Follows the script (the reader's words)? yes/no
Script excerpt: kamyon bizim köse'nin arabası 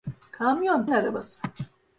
no